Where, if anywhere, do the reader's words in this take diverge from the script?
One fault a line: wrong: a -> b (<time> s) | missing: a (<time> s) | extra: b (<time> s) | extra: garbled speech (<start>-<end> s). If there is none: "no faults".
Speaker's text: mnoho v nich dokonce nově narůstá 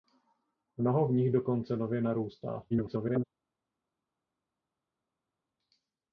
extra: garbled speech (2.7-3.3 s)